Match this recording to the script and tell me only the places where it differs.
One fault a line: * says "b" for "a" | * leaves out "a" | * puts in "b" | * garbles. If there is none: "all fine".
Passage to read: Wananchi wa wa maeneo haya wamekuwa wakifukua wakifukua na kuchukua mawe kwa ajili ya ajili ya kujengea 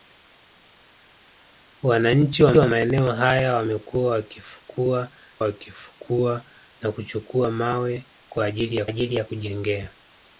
all fine